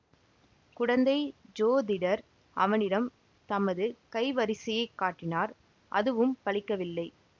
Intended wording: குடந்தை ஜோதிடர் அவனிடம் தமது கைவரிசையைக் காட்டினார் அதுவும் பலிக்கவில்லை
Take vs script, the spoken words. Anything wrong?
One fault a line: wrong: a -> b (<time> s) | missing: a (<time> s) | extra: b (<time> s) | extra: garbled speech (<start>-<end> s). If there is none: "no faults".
no faults